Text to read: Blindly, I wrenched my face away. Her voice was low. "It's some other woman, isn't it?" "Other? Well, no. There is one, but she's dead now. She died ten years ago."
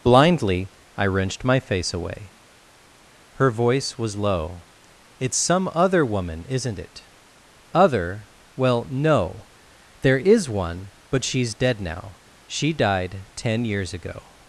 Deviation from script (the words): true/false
false